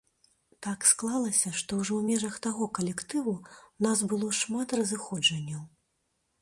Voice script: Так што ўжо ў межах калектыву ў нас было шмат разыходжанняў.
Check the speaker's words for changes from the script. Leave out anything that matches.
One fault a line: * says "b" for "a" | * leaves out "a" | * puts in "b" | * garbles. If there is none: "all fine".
* puts in "склалася"
* puts in "таго"